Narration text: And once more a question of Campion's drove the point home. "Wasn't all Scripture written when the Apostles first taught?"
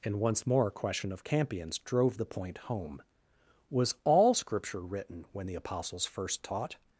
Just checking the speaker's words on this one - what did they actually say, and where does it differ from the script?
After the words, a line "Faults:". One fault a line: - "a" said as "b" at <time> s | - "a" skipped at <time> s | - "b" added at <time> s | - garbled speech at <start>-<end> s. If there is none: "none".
And once more a question of Campion's drove the point home. "Was all Scripture written when the Apostles first taught?"
Faults:
- "Wasn't" said as "Was" at 3.7 s